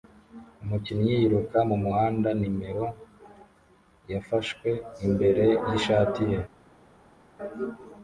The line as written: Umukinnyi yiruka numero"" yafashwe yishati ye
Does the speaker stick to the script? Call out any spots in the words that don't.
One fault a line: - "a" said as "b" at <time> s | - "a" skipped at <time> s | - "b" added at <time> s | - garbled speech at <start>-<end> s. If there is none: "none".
- "mumuhanda" added at 1.7 s
- "imbere" added at 5.0 s